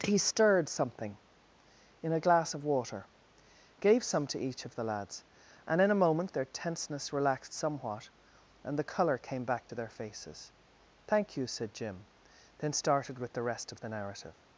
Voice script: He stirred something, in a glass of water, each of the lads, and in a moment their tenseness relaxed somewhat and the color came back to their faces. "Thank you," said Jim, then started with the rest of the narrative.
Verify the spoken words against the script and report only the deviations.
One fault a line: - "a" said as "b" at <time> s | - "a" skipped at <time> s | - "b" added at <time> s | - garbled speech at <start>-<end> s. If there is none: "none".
- "gave some to" added at 3.8 s